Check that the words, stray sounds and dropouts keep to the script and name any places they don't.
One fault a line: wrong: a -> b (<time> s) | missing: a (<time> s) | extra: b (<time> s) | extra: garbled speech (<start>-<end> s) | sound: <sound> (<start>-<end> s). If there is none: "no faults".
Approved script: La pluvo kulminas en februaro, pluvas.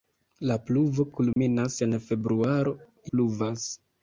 sound: dropout (1.3-1.4 s)